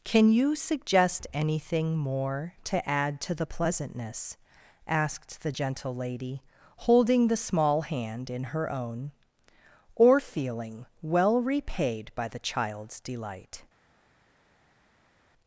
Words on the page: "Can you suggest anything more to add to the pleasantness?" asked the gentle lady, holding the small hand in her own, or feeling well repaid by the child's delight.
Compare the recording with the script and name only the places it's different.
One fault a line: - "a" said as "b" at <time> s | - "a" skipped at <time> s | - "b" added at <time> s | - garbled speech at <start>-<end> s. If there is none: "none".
none